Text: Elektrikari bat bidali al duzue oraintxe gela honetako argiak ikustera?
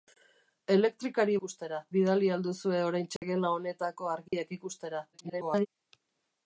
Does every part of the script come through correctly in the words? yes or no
no